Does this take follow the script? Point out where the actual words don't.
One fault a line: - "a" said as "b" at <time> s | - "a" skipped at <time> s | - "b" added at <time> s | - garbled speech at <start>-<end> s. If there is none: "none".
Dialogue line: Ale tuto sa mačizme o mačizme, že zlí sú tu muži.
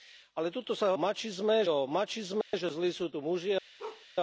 none